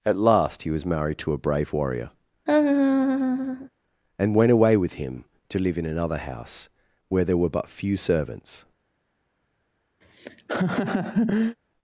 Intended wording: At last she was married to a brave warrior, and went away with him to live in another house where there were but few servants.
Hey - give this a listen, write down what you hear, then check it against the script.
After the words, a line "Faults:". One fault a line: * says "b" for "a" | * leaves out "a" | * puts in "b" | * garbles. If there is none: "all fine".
At last he was married to a brave warrior, and went away with him to live in another house where there were but few servants.
Faults:
* says "he" for "she"